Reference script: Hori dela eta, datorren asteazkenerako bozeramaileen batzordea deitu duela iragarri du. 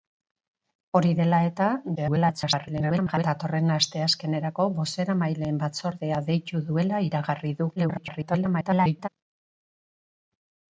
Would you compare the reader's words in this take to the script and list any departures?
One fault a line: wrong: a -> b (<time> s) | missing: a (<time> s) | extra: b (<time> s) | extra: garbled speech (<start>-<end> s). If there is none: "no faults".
extra: garbled speech (2.0-3.2 s)
extra: garbled speech (7.8-9.1 s)